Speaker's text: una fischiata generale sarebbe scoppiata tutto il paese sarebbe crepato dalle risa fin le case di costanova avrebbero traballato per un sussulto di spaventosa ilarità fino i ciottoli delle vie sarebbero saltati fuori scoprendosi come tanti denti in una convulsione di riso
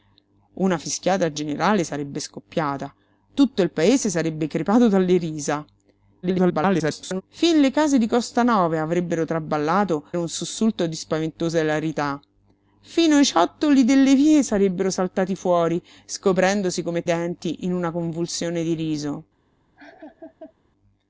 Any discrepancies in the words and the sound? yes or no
yes